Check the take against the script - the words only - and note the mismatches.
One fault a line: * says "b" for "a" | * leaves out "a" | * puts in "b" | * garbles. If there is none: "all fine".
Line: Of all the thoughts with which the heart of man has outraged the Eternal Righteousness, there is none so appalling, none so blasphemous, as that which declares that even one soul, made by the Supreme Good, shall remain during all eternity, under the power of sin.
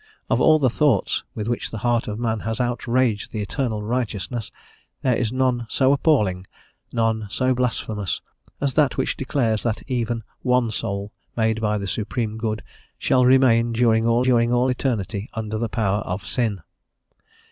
* puts in "during all"